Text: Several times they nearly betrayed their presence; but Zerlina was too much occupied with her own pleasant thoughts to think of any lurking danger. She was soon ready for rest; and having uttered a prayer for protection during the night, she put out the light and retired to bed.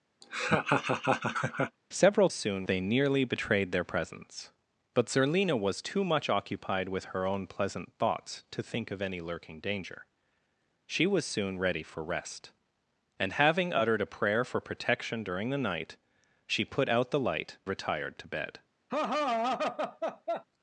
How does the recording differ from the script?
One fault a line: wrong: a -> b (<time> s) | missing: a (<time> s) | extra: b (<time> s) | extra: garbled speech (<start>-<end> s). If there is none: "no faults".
wrong: times -> soon (2.3 s)
missing: and (17.6 s)